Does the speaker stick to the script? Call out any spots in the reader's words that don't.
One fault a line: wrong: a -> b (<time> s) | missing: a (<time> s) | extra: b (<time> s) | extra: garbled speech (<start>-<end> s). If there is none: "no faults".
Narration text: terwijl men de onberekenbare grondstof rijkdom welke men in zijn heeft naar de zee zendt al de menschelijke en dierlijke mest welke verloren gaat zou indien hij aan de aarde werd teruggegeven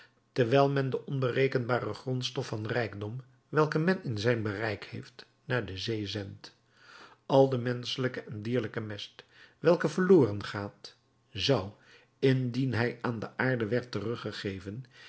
extra: van (2.5 s)
extra: bereik (4.4 s)